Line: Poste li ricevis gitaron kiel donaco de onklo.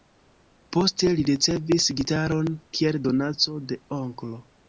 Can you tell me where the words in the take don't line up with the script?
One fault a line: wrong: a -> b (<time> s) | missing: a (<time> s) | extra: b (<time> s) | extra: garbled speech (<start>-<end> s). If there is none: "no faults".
no faults